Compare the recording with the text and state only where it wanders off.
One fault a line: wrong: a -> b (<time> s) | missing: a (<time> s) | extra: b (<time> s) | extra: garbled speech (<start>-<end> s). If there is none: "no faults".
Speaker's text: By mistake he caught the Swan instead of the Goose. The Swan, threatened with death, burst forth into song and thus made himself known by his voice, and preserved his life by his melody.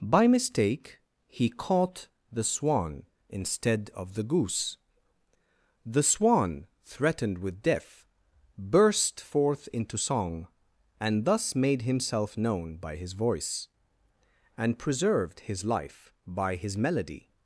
no faults